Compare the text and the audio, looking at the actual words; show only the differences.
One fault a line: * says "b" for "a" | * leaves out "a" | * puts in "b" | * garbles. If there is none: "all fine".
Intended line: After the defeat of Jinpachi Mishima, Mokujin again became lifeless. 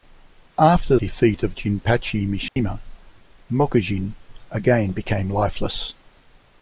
* leaves out "the"